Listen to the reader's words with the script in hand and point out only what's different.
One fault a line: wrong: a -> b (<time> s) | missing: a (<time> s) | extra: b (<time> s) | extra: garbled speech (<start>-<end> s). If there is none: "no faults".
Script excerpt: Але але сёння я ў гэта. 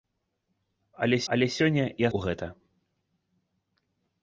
no faults